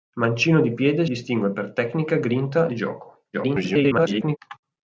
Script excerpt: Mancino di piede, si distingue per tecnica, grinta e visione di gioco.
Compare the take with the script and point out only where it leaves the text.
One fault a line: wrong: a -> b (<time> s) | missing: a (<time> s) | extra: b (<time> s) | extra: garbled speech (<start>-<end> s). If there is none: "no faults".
missing: si (1.1 s)
missing: e visione (2.7 s)
extra: garbled speech (3.3-4.4 s)